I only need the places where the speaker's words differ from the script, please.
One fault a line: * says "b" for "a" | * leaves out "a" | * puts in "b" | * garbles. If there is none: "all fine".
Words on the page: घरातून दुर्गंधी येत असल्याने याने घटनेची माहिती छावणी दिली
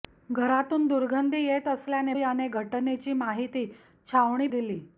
all fine